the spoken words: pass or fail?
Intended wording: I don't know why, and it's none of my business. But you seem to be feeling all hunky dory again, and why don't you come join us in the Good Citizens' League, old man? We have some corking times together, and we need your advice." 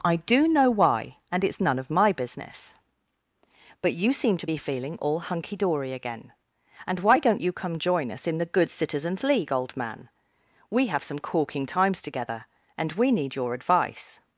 fail